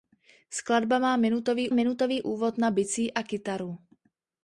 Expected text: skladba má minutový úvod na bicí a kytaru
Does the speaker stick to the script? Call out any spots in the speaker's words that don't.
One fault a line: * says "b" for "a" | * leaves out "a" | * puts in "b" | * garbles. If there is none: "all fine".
* puts in "minutový"